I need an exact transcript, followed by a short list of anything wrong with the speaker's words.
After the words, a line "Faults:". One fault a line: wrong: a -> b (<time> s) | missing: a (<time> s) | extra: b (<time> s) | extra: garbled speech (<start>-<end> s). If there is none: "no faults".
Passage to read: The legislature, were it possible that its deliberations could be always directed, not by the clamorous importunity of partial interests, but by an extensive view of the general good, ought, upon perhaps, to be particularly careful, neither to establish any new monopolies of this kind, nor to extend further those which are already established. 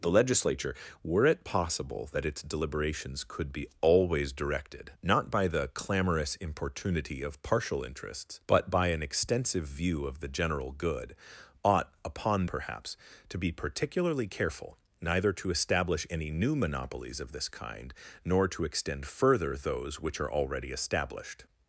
The legislature, were it possible that its deliberations could be always directed, not by the clamorous importunity of partial interests, but by an extensive view of the general good, ought, upon perhaps, to be particularly careful, neither to establish any new monopolies of this kind, nor to extend further those which are already established.
Faults:
no faults